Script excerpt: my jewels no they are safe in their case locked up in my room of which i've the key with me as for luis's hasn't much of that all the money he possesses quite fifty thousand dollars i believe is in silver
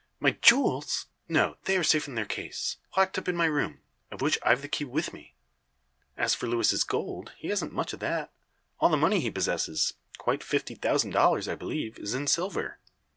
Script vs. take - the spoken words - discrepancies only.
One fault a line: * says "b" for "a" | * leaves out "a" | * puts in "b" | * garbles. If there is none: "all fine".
* puts in "gold he"